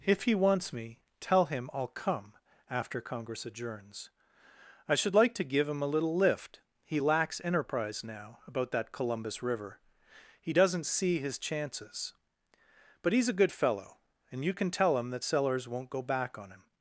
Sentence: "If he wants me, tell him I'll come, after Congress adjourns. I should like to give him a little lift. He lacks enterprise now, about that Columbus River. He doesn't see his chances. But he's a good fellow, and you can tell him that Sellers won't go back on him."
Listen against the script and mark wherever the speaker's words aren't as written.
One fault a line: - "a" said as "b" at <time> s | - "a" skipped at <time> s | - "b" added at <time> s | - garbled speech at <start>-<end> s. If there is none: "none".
none